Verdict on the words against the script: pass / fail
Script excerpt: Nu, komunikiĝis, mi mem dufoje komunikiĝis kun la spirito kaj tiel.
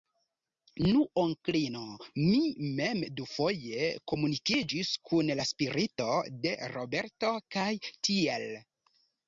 fail